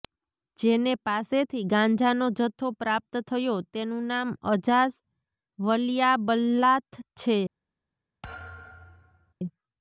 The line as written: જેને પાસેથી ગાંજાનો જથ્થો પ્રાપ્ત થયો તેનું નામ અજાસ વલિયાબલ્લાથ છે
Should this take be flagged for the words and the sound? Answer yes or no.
yes